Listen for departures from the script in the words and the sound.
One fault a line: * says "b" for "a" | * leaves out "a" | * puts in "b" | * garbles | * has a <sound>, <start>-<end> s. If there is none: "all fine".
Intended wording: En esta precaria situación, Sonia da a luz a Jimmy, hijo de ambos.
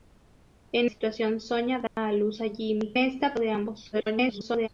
* leaves out "esta precaria"
* has a dropout, 1.9-2.0 s
* says "esta" for "hijo"
* garbles